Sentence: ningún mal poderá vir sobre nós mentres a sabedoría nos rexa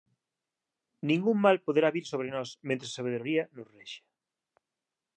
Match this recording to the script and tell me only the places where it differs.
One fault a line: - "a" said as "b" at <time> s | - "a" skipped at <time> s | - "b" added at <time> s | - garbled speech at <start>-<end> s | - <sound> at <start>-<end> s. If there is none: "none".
none